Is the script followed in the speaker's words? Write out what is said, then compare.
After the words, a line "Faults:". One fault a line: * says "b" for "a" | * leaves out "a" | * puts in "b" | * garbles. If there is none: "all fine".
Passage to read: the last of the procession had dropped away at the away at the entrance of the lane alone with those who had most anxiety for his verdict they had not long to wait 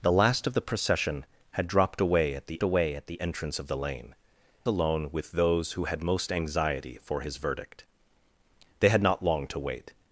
the last of the procession had dropped away at the away at the entrance of the lane alone with those who had most anxiety for his verdict they had not long to wait
Faults:
all fine